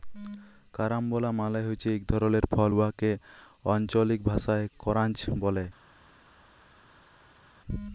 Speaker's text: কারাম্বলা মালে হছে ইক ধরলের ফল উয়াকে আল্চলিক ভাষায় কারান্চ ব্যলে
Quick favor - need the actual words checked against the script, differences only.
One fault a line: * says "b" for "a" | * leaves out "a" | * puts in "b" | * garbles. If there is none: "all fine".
all fine